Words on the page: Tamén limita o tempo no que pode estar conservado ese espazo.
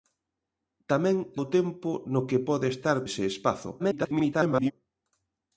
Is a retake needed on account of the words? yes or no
yes